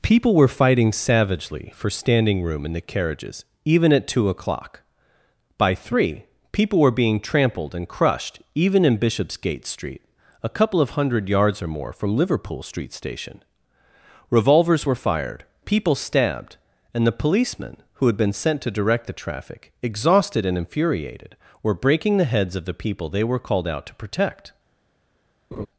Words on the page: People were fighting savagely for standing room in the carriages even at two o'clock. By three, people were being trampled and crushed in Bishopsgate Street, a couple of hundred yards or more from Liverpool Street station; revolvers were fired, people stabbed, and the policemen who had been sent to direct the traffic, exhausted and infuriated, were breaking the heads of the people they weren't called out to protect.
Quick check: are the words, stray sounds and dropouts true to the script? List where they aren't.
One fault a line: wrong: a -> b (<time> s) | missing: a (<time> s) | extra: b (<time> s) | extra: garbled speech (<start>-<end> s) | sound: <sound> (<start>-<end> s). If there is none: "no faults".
extra: even (8.6 s)
wrong: weren't -> were (23.2 s)
sound: laugh (25.5-25.7 s)